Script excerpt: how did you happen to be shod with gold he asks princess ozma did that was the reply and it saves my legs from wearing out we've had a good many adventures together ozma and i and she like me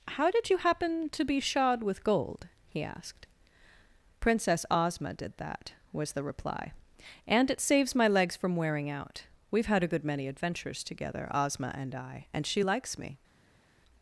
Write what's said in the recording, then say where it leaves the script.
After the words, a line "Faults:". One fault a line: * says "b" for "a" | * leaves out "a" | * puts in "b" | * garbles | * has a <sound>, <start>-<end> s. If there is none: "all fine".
how did you happen to be shod with gold he asked princess ozma did that was the reply and it saves my legs from wearing out we've had a good many adventures together ozma and i and she likes me
Faults:
* says "asked" for "asks"
* says "likes" for "like"